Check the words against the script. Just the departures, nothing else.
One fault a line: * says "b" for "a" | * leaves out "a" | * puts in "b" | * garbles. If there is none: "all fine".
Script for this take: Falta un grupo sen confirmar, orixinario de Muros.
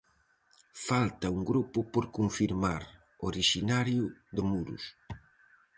* says "por" for "sen"